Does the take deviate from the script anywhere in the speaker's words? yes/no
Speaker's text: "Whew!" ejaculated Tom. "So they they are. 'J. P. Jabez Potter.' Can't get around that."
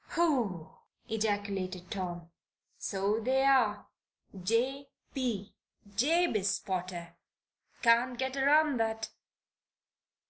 yes